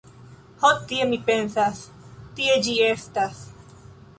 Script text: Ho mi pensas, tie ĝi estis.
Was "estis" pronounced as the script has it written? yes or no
no